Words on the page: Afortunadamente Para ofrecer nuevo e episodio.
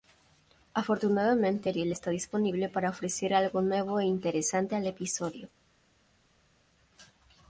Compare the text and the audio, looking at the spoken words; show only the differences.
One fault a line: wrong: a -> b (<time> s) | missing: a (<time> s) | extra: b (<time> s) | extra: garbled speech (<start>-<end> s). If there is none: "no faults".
extra: Ariel está disponible (1.7 s)
extra: algo (3.3 s)
extra: interesante al (4.0 s)